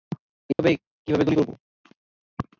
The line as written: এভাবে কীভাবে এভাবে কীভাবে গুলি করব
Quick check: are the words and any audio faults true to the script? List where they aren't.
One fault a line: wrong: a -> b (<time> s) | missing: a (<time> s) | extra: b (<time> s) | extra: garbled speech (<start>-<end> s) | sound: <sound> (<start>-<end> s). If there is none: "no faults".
sound: dropout (0.5-0.6 s)
missing: এভাবে কীভাবে (1.2 s)